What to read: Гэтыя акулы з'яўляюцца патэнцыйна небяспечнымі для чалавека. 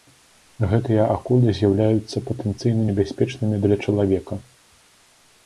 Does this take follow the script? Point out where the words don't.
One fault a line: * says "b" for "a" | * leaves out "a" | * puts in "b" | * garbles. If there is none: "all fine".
all fine